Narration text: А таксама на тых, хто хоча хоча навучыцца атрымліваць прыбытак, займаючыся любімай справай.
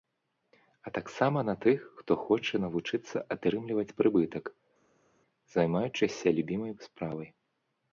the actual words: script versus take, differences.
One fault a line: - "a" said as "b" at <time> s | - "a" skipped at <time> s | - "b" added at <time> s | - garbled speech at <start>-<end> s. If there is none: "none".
- "хоча" skipped at 2.6 s